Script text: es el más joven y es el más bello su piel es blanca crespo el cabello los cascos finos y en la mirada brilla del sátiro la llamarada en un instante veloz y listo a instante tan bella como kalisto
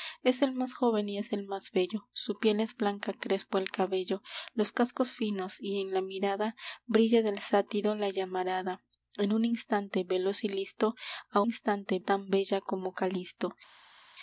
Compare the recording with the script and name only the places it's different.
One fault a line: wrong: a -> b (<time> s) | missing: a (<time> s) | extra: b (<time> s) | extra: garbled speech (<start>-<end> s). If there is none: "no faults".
no faults